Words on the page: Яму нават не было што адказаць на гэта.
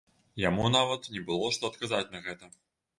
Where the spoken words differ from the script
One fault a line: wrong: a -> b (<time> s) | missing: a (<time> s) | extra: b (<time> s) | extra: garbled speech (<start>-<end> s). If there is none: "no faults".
no faults